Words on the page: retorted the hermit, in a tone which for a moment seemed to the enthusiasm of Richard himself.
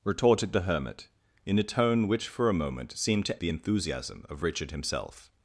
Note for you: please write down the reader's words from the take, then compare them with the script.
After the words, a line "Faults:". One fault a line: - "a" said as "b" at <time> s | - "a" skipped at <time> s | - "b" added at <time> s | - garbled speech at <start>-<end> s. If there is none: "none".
retorted the hermit, in a tone which for a moment seemed to the enthusiasm of Richard himself.
Faults:
none